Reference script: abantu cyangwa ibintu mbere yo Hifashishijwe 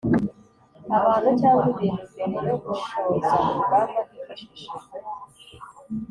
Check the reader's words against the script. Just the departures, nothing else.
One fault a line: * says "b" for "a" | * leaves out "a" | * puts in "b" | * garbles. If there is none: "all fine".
* puts in "gushoza urugamba"